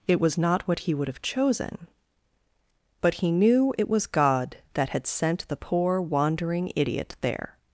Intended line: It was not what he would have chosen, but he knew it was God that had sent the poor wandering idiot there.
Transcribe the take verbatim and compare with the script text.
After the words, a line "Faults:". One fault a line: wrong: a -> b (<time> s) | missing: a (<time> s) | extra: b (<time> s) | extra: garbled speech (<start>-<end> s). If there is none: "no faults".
It was not what he would have chosen, but he knew it was God that had sent the poor wandering idiot there.
Faults:
no faults